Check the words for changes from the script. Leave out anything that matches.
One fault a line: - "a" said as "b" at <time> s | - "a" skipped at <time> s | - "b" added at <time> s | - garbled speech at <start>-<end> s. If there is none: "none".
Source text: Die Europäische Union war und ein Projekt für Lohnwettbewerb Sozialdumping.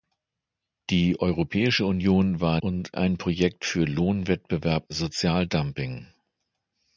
none